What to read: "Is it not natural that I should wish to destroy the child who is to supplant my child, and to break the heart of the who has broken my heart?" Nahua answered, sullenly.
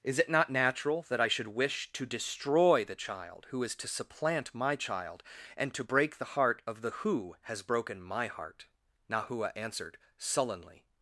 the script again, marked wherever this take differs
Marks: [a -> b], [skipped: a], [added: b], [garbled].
"Is it not natural that I should wish to destroy the child who is to supplant my child, and to break the heart of the who has broken my heart?" Nahua answered, sullenly.